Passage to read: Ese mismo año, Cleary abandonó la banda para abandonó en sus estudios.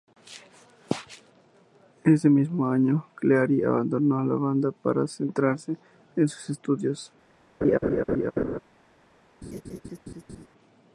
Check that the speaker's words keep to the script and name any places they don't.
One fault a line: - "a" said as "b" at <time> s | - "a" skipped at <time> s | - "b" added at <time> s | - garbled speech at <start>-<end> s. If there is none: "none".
- "abandonó" said as "centrarse" at 5.0 s